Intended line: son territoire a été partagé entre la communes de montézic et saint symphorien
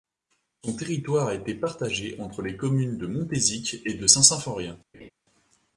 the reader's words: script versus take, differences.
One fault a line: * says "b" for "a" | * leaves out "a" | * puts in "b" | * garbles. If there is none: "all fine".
* says "les" for "la"
* puts in "de"